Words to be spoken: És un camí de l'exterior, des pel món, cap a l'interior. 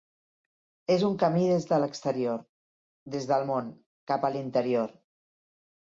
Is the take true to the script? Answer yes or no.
no